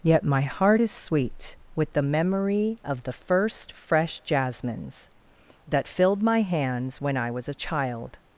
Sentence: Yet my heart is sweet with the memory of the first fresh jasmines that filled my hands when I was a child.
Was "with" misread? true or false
false